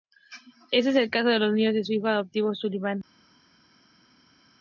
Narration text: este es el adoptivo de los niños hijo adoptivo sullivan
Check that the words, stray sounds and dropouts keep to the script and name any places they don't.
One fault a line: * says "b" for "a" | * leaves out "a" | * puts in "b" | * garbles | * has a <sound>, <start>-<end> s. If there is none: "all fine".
* says "caso" for "adoptivo"
* puts in "de su"